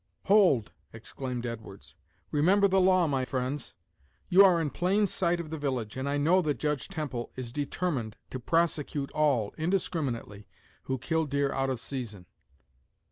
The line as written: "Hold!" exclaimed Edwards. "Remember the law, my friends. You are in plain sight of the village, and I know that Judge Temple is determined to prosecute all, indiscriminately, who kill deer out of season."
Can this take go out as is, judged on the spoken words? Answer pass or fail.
pass